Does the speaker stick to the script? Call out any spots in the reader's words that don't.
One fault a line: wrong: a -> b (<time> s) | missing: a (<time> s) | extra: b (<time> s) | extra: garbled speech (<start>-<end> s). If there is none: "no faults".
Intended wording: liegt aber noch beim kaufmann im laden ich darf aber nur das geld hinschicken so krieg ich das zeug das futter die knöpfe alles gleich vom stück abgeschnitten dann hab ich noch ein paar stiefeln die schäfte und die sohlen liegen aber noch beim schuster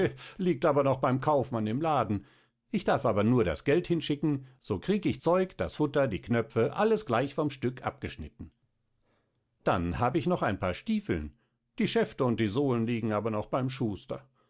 missing: das (5.2 s)